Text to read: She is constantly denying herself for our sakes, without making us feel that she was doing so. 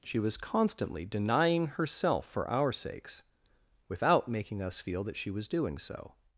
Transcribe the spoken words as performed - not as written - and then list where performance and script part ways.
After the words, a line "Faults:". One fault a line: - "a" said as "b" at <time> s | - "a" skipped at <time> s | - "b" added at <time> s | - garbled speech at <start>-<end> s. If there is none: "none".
She was constantly denying herself for our sakes, without making us feel that she was doing so.
Faults:
- "is" said as "was" at 0.2 s